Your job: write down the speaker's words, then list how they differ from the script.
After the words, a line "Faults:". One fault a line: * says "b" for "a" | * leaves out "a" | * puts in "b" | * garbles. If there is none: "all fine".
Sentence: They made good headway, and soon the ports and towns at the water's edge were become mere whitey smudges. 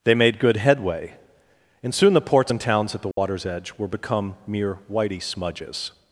They made good headway, and soon the ports and towns at the water's edge were become mere whitey smudges.
Faults:
all fine